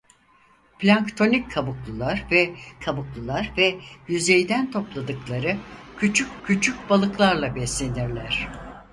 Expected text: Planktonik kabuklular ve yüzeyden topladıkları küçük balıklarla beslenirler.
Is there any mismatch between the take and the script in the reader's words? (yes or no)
yes